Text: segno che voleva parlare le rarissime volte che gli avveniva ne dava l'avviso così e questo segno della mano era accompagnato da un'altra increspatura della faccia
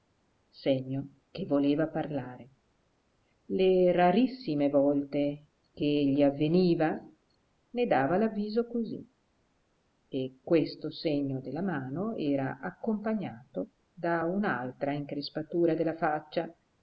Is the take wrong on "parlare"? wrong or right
right